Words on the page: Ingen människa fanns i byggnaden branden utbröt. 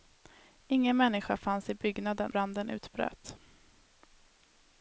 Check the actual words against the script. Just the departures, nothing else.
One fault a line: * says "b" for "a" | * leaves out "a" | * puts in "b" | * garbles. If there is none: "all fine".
all fine